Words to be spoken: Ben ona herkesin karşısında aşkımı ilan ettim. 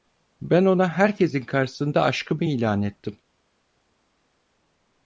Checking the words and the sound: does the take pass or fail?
pass